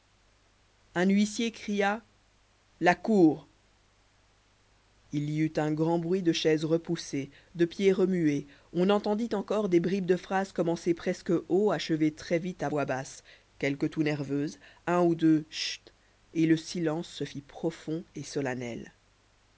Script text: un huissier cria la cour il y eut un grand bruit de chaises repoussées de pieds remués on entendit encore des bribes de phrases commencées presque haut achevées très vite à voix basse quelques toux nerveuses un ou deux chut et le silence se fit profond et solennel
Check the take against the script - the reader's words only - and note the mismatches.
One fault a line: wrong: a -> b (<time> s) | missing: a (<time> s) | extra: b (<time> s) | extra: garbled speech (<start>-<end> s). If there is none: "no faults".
no faults